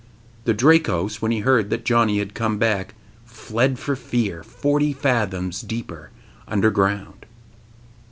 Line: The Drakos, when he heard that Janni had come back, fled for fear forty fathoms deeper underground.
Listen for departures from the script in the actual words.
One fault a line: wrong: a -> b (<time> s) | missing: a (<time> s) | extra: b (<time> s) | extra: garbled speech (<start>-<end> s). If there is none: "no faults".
no faults